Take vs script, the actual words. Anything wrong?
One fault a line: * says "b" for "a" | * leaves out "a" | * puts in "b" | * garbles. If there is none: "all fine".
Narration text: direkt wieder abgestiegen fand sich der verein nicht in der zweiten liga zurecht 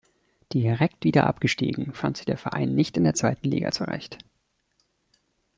all fine